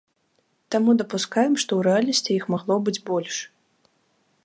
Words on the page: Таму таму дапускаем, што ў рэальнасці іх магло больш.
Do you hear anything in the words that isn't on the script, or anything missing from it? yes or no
yes